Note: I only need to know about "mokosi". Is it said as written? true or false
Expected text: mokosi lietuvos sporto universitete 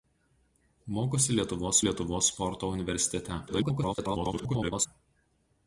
true